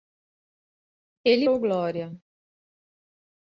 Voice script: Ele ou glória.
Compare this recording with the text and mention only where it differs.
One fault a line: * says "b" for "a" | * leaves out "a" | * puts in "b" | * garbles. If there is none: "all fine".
all fine